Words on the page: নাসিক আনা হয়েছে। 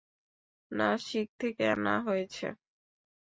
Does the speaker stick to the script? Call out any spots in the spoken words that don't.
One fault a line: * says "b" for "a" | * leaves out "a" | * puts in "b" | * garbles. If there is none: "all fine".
* puts in "থেকে"